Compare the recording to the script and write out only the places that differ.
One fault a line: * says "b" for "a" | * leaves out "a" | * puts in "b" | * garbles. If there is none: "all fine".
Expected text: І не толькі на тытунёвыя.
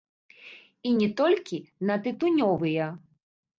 all fine